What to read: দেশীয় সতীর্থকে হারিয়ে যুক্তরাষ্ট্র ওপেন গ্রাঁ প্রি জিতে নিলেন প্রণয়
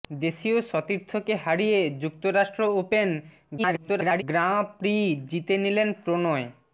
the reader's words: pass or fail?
fail